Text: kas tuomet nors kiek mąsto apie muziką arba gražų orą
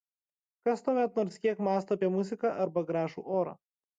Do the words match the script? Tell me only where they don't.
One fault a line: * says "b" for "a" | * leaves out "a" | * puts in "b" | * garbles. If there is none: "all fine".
all fine